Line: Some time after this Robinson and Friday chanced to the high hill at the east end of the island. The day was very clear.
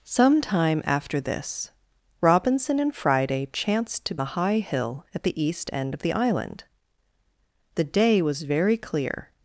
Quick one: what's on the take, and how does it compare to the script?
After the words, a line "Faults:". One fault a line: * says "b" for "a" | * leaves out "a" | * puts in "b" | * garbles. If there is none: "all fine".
Some time after this Robinson and Friday chanced to the high hill at the east end of the island. The day was very clear.
Faults:
all fine